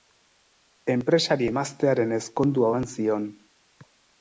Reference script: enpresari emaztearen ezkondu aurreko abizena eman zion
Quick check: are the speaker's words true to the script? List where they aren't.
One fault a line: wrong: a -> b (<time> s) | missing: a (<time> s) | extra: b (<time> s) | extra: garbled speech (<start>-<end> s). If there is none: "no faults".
missing: aurreko abizena (2.7 s)